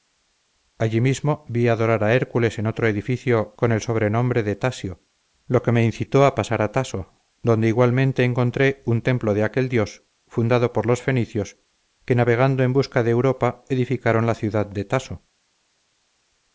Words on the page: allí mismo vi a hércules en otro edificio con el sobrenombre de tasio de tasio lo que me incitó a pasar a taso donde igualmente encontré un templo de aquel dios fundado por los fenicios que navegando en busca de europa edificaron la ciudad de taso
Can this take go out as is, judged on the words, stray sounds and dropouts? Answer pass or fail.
fail